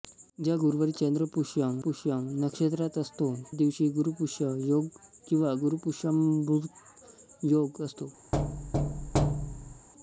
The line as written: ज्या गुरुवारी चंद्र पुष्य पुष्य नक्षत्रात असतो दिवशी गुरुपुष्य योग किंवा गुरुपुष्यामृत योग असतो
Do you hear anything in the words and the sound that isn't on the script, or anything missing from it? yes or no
yes